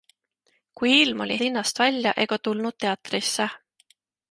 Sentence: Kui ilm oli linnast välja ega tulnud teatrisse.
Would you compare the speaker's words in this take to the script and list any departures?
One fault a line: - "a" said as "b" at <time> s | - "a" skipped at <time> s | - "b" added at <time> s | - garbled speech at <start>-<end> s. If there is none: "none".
none